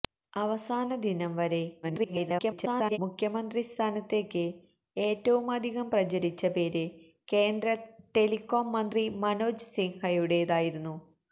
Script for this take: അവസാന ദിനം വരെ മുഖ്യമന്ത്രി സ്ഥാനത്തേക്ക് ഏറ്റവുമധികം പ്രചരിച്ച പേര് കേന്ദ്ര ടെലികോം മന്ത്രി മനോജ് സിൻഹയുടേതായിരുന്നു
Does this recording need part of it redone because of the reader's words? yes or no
yes